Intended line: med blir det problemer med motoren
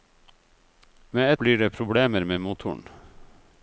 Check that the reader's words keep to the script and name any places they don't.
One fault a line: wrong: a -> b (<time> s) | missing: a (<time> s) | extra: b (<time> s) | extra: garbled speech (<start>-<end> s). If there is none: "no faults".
no faults